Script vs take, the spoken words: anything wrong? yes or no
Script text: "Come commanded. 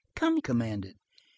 no